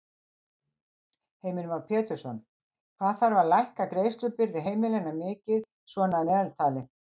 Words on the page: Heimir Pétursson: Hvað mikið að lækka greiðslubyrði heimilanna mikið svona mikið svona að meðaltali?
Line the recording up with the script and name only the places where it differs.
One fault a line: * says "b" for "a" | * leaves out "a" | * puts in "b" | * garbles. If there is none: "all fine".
* puts in "Már"
* says "þarf" for "mikið"
* leaves out "mikið svona"